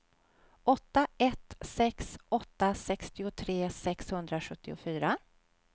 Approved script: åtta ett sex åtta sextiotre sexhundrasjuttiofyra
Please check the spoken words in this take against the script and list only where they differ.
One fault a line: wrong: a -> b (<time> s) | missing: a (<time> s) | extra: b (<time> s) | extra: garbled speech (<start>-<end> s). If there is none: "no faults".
no faults